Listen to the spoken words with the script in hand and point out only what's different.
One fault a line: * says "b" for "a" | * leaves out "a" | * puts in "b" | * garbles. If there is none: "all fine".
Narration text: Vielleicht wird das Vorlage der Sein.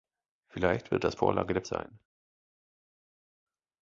all fine